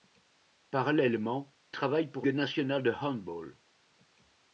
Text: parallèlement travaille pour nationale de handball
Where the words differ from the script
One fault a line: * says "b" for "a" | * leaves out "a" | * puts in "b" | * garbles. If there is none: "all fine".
all fine